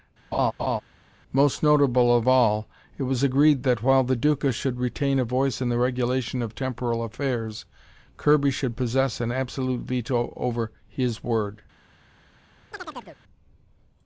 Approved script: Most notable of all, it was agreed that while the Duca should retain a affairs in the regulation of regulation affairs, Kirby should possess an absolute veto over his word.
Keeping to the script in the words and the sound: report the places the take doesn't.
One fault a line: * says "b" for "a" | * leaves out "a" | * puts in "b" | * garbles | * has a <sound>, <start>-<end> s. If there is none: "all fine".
* has a laugh, 0.3-0.8 s
* says "voice" for "affairs"
* says "temporal" for "regulation"
* has a chirp, 12.7-13.2 s